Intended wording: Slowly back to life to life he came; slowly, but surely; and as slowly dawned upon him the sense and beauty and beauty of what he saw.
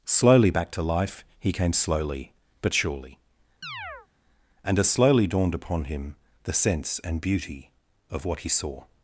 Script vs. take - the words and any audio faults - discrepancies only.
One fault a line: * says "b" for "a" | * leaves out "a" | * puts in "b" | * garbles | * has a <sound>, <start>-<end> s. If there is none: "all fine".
* leaves out "to life"
* has a chirp, 3.6-4.1 s
* leaves out "and beauty"